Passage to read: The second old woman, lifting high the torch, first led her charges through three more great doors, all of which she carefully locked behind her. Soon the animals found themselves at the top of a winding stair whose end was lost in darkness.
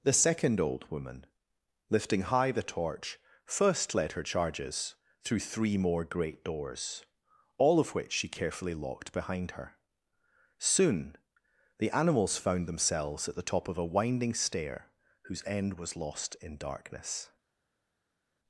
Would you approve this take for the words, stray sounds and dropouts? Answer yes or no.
yes